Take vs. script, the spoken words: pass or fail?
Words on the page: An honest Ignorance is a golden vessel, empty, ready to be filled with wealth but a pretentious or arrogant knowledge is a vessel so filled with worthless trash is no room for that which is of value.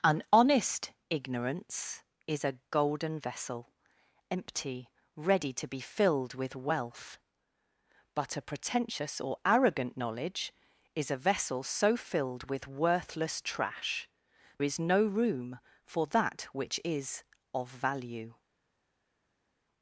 pass